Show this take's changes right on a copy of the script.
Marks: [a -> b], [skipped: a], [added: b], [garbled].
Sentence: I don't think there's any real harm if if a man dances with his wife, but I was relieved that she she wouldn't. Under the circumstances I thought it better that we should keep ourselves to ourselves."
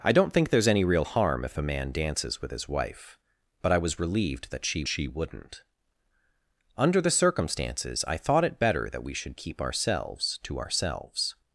I don't think there's any real harm if if a man dances with his wife, but I was relieved that she she wouldn't. Under the circumstances I thought it better that we should keep ourselves to ourselves."